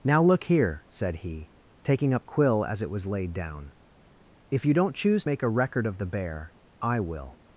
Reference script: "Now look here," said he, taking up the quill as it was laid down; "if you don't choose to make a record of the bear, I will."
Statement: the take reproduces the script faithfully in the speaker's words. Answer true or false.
false